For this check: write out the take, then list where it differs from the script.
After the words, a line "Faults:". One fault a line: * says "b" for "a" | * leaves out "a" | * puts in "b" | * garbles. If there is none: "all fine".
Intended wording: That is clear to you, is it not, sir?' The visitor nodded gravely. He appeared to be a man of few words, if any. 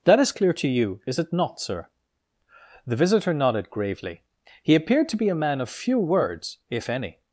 That is clear to you, is it not, sir?' The visitor nodded gravely. He appeared to be a man of few words, if any.
Faults:
all fine